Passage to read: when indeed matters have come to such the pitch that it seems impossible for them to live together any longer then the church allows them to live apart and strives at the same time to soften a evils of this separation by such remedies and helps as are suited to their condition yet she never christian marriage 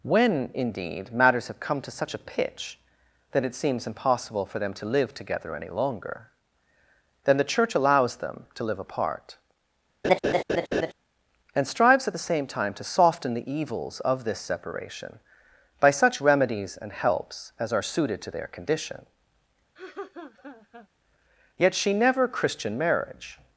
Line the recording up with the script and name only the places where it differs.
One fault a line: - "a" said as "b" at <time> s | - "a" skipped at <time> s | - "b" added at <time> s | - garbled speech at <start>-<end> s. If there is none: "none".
- "the" said as "a" at 2.1 s
- "a" said as "the" at 13.3 s